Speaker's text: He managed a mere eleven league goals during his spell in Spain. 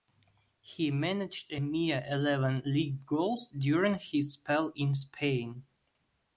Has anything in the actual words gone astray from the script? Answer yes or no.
no